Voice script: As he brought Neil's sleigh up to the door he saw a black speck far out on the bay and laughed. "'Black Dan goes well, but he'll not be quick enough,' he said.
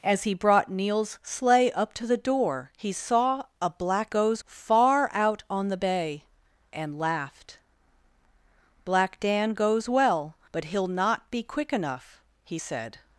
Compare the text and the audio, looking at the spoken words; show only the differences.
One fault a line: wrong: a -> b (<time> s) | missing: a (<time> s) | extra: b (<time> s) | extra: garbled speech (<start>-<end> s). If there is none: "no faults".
wrong: speck -> goes (4.1 s)